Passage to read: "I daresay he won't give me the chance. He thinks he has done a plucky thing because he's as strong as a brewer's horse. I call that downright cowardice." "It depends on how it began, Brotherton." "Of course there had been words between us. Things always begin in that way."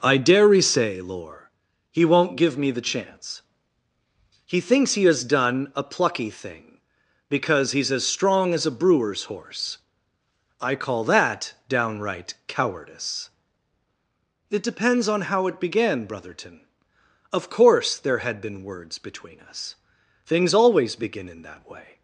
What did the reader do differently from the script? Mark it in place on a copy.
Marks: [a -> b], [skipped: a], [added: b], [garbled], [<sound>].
"I [daresay -> dare say lore] he won't give me the chance. He thinks he has done a plucky thing because he's as strong as a brewer's horse. I call that downright cowardice." "It depends on how it began, Brotherton." "Of course there had been words between us. Things always begin in that way."